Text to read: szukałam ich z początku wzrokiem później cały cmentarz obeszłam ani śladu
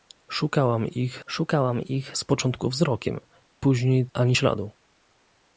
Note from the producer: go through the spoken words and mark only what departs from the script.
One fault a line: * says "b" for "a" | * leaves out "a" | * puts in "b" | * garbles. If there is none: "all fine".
* puts in "szukałam ich"
* leaves out "cały cmentarz obeszłam"